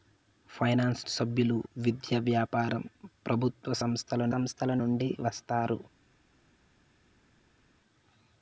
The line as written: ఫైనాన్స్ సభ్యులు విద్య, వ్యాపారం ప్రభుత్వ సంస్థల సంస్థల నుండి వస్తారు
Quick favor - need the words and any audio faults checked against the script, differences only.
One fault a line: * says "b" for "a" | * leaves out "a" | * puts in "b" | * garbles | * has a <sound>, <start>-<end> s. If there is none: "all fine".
all fine